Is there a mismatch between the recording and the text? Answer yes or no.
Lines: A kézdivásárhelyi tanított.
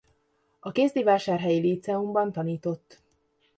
yes